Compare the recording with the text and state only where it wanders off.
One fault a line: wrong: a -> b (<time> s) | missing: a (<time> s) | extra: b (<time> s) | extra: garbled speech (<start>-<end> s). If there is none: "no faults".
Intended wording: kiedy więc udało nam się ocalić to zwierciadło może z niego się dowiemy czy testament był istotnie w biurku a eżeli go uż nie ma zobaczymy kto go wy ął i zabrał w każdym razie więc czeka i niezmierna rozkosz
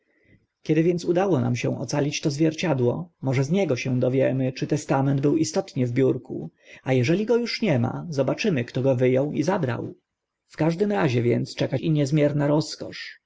no faults